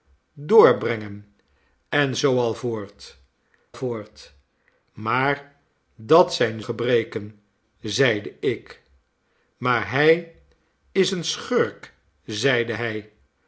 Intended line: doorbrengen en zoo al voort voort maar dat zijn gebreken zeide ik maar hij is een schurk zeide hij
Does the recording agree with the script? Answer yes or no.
yes